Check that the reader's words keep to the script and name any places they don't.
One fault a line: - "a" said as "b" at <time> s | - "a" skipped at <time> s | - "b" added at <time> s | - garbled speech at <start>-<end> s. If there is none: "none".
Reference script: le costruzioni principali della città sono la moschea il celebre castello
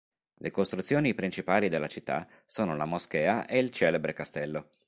- "e" added at 3.5 s